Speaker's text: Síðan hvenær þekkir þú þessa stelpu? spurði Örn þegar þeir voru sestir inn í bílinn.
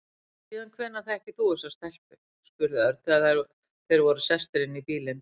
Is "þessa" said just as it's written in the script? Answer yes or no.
yes